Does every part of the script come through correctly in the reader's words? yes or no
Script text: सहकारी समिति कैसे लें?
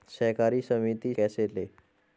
yes